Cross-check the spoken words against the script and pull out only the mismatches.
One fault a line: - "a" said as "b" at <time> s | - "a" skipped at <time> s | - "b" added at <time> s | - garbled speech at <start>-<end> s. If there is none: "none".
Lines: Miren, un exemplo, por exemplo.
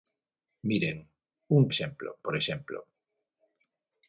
none